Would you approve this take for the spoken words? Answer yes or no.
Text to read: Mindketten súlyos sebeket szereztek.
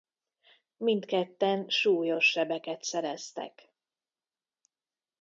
yes